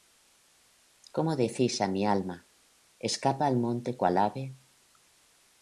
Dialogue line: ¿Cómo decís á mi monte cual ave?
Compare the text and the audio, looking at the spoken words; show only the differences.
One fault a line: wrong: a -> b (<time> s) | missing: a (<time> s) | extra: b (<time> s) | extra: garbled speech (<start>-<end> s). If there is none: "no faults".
extra: alma Escapa al (2.1 s)